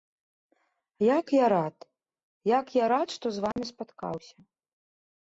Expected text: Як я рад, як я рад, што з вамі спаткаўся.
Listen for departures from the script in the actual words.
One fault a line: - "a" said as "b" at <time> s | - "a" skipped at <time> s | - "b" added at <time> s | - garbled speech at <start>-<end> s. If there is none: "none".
none